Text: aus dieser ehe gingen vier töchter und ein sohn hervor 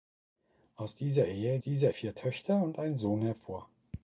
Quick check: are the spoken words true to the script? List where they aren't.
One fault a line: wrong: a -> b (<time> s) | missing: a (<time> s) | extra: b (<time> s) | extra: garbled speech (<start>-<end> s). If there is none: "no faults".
wrong: gingen -> dieser (1.6 s)